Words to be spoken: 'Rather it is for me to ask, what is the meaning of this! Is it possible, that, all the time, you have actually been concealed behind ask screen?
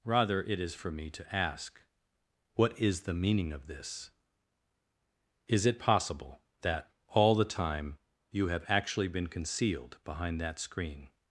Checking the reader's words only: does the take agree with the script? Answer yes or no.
no